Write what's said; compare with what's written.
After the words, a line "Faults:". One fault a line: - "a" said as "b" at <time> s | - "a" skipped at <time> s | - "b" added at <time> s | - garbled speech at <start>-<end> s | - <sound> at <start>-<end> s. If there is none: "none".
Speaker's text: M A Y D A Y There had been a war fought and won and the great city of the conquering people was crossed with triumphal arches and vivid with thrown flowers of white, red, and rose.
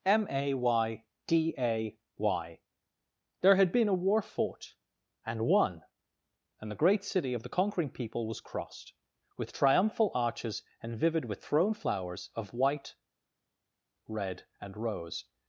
M A Y D A Y There had been a war fought and won and the great city of the conquering people was crossed with triumphal arches and vivid with thrown flowers of white, red, and rose.
Faults:
none